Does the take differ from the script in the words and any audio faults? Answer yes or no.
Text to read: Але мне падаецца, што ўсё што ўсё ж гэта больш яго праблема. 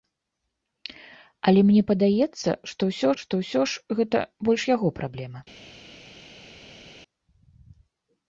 no